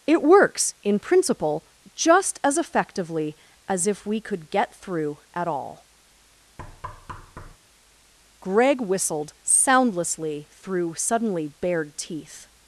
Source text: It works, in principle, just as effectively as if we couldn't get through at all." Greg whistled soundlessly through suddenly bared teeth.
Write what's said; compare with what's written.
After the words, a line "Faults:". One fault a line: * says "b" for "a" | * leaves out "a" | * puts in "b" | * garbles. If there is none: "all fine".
It works, in principle, just as effectively as if we could get through at all." Greg whistled soundlessly through suddenly bared teeth.
Faults:
* says "could" for "couldn't"